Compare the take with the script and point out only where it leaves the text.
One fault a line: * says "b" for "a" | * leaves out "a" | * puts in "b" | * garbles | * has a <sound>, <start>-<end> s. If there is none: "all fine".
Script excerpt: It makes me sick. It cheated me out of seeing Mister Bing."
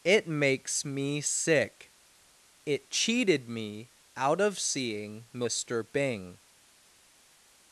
all fine